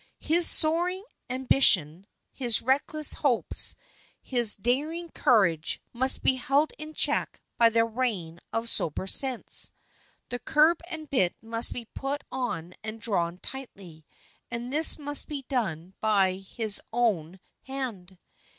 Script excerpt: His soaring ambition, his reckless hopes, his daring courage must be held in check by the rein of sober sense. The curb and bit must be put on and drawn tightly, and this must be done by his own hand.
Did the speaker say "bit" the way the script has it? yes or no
yes